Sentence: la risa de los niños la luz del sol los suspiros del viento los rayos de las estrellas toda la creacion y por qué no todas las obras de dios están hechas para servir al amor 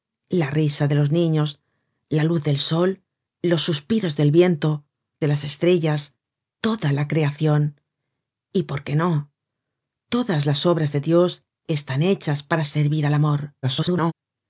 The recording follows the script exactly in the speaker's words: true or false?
false